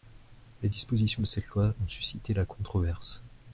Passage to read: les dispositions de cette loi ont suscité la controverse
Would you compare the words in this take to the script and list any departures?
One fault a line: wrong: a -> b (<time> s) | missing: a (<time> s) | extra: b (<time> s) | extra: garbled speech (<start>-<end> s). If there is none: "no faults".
no faults